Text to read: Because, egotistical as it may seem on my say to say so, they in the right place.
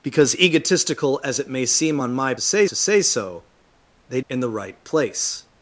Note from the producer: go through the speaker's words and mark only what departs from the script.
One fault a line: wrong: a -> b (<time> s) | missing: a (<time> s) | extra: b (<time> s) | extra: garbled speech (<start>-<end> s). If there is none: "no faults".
no faults